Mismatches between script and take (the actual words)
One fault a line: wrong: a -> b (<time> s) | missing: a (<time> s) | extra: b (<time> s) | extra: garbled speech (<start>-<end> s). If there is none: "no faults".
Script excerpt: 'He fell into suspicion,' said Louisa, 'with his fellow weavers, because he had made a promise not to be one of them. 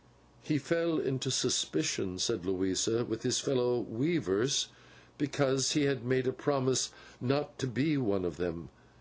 no faults